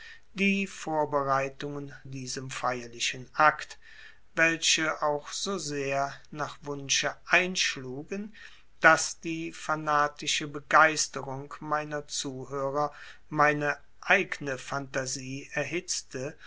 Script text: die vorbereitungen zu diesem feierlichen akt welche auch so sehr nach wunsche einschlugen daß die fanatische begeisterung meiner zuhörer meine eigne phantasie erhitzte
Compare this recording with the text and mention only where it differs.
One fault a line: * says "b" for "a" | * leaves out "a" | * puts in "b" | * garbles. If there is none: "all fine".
* leaves out "zu"